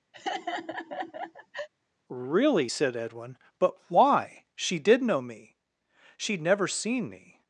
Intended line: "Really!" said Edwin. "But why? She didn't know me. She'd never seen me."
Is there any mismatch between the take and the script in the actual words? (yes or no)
yes